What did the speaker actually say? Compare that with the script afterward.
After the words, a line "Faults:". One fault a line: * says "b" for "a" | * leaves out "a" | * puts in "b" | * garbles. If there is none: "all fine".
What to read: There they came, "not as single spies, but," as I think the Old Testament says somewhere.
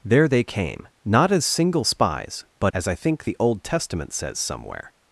There they came, "not as single spies, but," as I think the Old Testament says somewhere.
Faults:
all fine